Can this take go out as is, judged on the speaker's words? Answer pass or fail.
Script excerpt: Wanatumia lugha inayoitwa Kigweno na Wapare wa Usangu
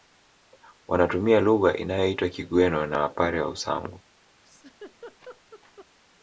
pass